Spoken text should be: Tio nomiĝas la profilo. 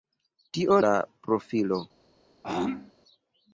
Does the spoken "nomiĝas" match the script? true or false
false